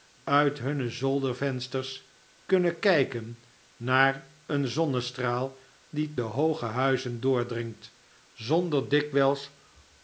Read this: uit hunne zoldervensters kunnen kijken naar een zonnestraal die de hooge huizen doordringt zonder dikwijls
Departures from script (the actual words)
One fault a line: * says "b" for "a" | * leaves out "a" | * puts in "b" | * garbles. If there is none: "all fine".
all fine